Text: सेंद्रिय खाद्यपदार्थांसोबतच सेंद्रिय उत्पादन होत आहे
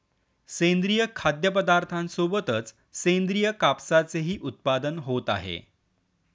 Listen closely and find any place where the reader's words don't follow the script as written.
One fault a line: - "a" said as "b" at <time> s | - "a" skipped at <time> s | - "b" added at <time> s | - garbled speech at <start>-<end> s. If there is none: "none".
- "कापसाचेही" added at 3.5 s